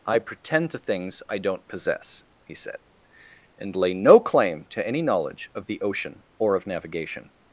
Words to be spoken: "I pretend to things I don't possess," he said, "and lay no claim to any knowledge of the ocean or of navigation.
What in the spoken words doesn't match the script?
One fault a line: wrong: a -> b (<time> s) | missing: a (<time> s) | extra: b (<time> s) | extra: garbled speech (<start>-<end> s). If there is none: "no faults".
no faults